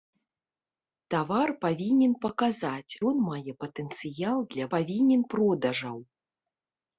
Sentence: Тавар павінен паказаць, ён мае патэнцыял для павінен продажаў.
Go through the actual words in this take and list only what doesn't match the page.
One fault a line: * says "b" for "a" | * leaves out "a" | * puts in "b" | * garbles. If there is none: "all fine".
all fine